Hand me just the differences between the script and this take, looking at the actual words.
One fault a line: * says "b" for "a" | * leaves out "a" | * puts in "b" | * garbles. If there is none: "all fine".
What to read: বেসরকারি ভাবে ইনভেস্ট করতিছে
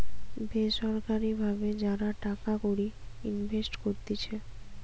* puts in "যারা টাকা কড়ি"